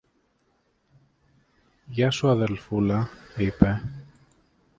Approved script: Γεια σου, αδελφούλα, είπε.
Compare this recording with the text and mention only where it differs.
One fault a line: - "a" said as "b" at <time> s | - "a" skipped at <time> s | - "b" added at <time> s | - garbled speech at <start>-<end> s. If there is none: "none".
none